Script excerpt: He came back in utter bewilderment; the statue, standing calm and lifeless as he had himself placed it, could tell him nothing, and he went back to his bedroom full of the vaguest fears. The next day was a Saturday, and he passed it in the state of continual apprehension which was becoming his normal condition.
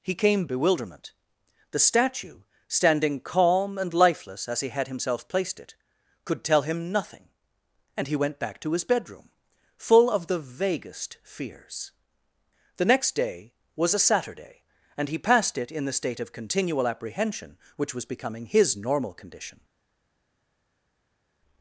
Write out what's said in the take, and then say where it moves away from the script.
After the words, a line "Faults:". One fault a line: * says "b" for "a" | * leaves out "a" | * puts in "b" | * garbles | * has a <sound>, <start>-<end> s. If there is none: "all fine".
He came bewilderment; the statue, standing calm and lifeless as he had himself placed it, could tell him nothing, and he went back to his bedroom full of the vaguest fears. The next day was a Saturday, and he passed it in the state of continual apprehension which was becoming his normal condition.
Faults:
* leaves out "back in utter"